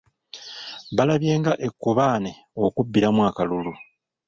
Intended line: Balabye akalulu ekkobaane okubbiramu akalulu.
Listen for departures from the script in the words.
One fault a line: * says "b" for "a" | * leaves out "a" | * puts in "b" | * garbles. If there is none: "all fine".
* says "nga" for "akalulu"